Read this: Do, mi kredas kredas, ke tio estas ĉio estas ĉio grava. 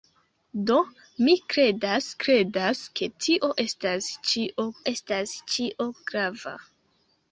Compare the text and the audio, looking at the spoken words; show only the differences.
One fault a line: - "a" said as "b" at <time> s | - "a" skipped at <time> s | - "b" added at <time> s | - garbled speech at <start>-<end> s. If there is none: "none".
none